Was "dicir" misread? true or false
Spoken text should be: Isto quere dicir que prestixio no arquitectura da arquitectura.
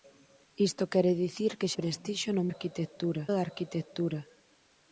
false